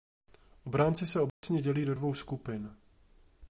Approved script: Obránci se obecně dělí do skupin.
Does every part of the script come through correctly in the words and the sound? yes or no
no